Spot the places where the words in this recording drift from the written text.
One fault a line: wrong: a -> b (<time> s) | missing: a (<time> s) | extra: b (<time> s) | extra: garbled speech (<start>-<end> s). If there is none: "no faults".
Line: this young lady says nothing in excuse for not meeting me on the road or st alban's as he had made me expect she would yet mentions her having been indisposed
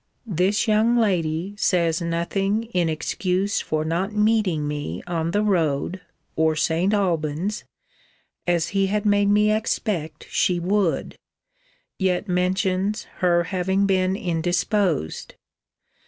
no faults